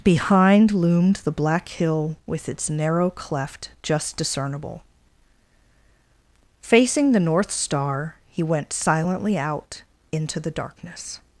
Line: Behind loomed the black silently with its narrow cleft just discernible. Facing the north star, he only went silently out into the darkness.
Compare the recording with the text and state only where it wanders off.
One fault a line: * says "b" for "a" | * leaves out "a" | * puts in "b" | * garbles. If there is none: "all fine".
* says "hill" for "silently"
* leaves out "only"